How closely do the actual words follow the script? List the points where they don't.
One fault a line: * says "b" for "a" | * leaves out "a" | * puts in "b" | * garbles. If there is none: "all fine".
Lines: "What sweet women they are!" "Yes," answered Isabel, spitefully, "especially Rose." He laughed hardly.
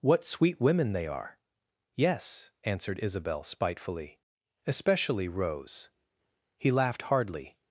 all fine